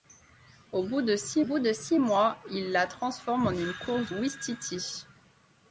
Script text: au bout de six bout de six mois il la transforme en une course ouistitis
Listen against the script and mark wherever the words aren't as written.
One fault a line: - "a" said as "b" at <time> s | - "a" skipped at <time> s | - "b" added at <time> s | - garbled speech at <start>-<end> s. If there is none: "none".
none